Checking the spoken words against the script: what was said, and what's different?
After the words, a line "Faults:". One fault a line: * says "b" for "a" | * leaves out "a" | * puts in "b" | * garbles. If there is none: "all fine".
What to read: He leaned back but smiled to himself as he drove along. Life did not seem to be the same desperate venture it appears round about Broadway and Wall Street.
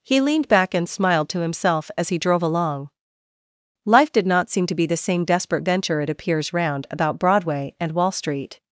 He leaned back and smiled to himself as he drove along. Life did not seem to be the same desperate venture it appears round about Broadway and Wall Street.
Faults:
* says "and" for "but"